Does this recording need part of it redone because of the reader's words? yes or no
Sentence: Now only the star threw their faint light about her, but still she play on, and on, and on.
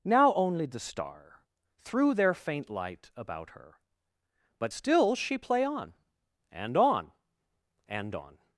no